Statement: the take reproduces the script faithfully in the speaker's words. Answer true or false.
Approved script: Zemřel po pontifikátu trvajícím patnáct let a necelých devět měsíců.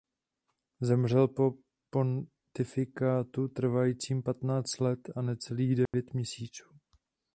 true